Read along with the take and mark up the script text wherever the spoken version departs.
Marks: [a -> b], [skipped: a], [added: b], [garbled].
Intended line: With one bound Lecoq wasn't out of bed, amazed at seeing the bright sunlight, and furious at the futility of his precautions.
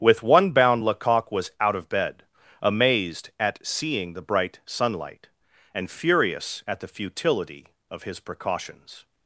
With one bound Lecoq [wasn't -> was] out of bed, amazed at seeing the bright sunlight, and furious at the futility of his precautions.